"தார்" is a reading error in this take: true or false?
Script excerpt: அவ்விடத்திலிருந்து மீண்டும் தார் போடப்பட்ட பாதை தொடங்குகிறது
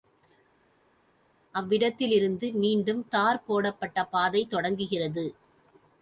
false